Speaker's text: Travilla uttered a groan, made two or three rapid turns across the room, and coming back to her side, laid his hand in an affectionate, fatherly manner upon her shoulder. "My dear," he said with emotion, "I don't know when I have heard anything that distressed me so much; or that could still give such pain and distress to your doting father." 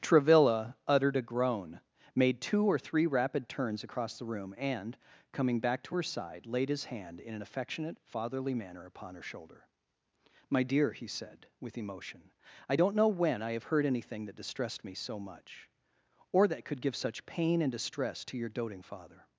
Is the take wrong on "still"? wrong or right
wrong